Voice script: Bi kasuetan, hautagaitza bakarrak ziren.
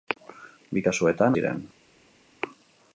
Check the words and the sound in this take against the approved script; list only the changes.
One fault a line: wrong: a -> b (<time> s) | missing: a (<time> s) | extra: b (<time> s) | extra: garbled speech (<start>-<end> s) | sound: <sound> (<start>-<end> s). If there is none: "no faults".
missing: hautagaitza bakarrak (1.4 s)